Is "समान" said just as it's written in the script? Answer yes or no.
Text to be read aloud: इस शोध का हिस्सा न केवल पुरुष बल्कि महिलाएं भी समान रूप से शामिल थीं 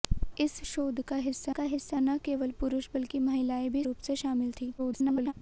no